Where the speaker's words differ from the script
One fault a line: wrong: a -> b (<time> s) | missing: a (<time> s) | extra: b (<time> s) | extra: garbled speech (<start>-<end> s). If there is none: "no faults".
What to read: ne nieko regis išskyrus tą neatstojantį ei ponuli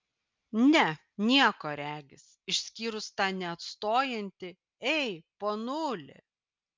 no faults